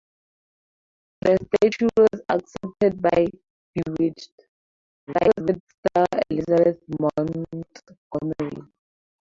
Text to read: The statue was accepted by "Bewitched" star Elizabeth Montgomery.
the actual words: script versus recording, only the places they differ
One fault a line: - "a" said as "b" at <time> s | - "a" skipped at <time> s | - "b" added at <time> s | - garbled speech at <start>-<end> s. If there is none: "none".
- garbled speech at 5.1-5.6 s